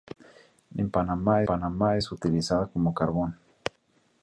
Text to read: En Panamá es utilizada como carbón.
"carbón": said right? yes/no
yes